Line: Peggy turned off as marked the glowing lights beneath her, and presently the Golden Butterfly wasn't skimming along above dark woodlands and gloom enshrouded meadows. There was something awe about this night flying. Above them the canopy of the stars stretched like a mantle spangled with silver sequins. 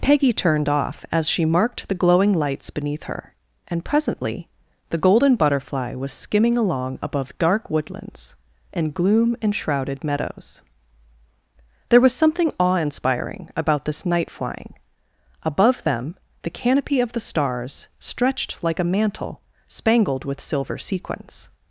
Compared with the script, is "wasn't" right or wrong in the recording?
wrong